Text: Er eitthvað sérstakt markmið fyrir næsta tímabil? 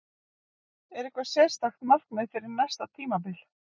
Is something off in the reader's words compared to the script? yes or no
no